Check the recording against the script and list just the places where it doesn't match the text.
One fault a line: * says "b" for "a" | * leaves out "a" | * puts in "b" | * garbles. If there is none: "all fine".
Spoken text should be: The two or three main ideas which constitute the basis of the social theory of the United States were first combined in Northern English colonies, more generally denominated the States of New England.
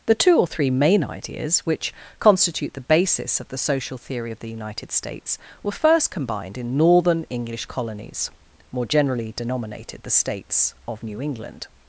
all fine